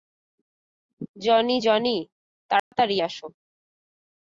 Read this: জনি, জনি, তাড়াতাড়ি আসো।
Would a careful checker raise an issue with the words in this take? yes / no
no